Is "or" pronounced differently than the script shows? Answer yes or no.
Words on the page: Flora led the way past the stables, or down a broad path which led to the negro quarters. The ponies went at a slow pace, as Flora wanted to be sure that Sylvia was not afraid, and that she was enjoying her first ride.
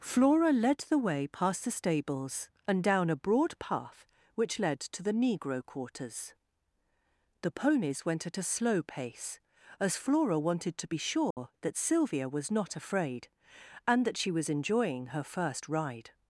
yes